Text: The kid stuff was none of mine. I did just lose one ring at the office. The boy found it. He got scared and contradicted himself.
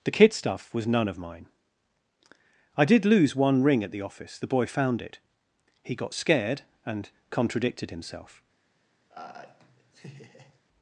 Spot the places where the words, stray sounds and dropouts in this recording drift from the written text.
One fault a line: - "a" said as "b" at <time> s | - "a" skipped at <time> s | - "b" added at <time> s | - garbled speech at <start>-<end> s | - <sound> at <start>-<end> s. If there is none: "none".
- "just" skipped at 3.0 s
- laugh at 9.1-10.6 s